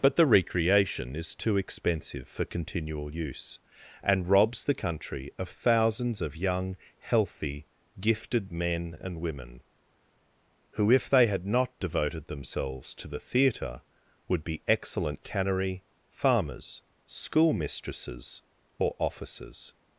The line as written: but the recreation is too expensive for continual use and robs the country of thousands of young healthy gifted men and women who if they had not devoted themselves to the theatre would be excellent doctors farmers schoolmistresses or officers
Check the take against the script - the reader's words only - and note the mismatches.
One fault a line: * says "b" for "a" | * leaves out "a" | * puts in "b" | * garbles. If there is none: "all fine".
* says "cannery" for "doctors"